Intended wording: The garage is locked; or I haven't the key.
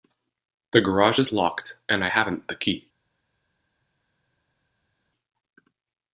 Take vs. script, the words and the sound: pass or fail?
fail